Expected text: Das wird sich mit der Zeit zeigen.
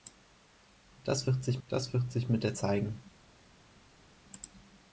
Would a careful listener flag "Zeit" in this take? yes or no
yes